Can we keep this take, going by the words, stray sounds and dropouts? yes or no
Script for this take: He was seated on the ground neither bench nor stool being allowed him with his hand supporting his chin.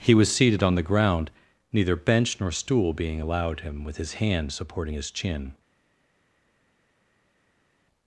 yes